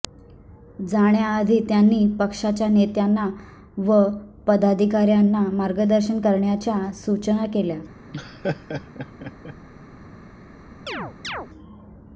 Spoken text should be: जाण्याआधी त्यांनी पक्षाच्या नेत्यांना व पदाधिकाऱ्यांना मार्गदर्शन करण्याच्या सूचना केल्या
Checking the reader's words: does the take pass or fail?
pass